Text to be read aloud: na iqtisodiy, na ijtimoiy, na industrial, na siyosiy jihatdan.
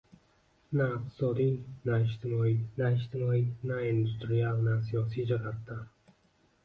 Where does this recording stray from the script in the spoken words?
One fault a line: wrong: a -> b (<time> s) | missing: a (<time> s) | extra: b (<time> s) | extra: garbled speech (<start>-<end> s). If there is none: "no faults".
extra: ijtimoiy na (3.0 s)